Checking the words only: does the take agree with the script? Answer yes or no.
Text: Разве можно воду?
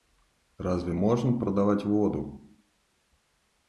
no